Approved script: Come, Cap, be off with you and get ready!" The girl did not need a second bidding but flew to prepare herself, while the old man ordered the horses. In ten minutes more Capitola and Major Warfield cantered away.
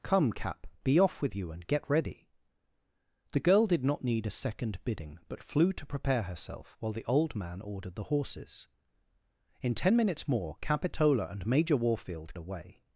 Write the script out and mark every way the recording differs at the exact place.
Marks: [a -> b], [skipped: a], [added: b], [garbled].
Come, Cap, be off with you and get ready!" The girl did not need a second bidding but flew to prepare herself, while the old man ordered the horses. In ten minutes more Capitola and Major Warfield [skipped: cantered] away.